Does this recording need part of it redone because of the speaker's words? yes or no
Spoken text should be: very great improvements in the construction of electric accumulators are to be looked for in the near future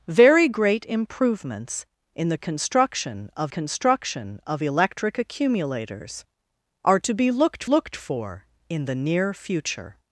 yes